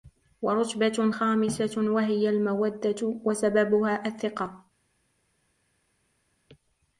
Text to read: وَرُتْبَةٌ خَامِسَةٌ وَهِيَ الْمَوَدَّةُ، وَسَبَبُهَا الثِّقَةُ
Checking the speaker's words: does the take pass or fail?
pass